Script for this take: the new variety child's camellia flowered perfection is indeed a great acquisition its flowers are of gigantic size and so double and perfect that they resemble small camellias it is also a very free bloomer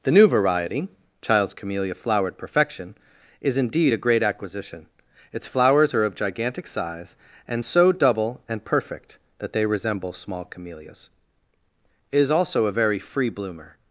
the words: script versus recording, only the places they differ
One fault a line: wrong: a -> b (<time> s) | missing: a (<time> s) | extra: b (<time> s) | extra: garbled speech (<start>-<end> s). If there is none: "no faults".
no faults